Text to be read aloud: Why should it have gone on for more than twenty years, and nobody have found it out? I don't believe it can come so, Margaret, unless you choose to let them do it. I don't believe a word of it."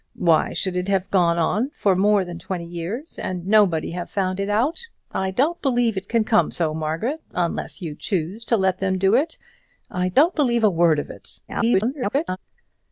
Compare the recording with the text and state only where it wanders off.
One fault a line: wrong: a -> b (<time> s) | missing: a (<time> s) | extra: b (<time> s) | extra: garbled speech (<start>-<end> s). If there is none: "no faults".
extra: garbled speech (11.5-12.4 s)